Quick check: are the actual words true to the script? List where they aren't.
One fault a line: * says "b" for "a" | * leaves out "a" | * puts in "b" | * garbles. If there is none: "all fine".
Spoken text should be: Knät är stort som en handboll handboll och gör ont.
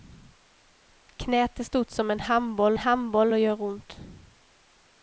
all fine